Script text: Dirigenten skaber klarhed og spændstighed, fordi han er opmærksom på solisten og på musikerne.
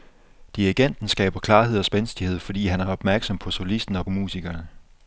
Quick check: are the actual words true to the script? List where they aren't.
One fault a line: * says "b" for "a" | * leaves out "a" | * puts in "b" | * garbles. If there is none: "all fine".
* leaves out "på"